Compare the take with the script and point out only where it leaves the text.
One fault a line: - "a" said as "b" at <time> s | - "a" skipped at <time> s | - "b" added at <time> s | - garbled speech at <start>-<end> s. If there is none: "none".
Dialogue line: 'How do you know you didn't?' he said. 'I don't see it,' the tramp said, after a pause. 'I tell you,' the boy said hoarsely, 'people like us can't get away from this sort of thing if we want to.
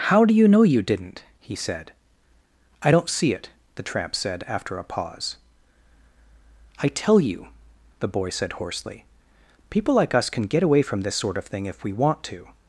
- "can't" said as "can" at 10.3 s